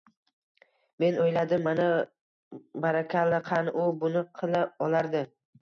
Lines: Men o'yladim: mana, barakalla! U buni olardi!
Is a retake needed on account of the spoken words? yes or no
yes